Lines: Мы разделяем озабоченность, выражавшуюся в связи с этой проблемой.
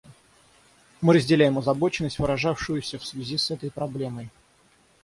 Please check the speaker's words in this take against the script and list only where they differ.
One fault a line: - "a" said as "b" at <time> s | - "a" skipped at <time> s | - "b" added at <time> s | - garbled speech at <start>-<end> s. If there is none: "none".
none